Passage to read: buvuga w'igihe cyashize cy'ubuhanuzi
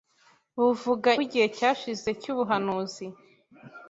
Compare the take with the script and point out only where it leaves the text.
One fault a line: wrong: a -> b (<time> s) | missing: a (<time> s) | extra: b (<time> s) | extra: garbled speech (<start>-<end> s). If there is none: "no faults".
no faults